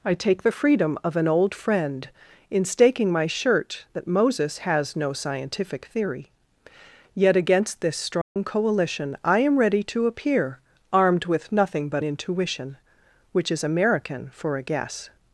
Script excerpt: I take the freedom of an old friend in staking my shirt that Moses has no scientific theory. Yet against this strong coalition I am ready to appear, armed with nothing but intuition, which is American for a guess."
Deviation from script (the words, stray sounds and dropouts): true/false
true